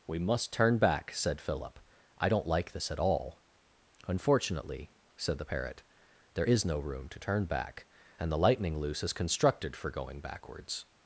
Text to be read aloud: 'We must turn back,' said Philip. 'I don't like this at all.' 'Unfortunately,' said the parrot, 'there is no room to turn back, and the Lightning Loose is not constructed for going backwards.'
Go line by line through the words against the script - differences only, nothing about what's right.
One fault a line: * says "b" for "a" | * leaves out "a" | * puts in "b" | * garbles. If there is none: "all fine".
* leaves out "not"